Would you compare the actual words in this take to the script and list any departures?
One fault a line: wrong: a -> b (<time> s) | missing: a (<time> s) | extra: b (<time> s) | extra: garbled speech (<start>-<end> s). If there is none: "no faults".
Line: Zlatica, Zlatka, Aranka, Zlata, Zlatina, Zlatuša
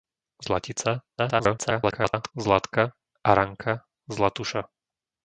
extra: garbled speech (1.2-2.3 s)
missing: Zlata Zlatina (3.8 s)